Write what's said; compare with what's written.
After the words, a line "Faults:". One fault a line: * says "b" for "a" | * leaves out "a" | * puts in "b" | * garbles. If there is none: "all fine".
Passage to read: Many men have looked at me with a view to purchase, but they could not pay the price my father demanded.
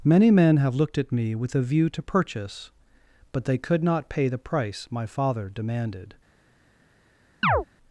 Many men have looked at me with a view to purchase, but they could not pay the price my father demanded.
Faults:
all fine